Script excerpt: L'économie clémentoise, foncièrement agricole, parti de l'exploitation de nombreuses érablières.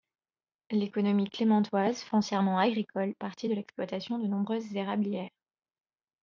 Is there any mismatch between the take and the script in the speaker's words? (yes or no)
no